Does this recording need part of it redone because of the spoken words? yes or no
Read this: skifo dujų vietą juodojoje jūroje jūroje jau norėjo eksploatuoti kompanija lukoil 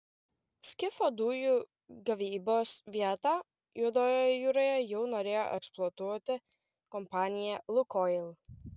yes